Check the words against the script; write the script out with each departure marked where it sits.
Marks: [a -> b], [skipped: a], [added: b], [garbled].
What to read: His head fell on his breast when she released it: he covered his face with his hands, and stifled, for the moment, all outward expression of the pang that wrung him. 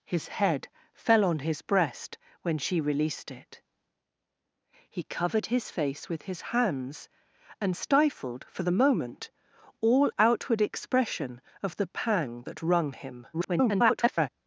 His head fell on his breast when she released it: he covered his face with his hands, and stifled, for the moment, all outward expression of the pang that wrung him. [garbled]